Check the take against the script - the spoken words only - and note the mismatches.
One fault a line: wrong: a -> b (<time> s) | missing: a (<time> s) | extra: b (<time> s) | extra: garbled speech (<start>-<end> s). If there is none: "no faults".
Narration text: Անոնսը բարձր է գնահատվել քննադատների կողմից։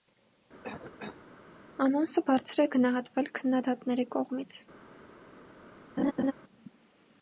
no faults